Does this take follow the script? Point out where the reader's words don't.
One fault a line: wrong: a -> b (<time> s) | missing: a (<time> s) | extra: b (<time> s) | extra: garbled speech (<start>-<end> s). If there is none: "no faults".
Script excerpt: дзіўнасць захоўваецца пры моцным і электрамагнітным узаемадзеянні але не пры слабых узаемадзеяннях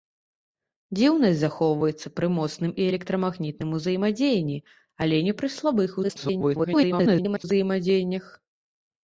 extra: garbled speech (6.0-7.4 s)